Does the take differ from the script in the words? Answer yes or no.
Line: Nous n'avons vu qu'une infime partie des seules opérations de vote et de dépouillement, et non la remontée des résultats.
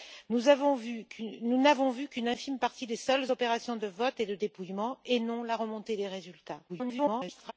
yes